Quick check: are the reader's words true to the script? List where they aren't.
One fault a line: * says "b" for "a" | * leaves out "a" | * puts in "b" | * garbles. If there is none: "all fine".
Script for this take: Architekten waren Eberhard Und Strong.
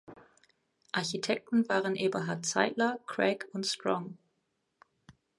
* puts in "Zeidler Craig"